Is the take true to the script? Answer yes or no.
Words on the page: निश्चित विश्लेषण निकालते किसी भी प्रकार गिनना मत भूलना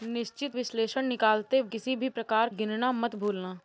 yes